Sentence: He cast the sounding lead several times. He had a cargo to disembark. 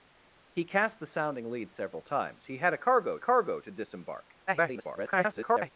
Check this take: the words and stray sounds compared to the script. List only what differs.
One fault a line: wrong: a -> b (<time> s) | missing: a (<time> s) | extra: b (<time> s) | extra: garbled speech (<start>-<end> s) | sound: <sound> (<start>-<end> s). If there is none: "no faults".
extra: cargo (3.2 s)
extra: garbled speech (4.5-5.7 s)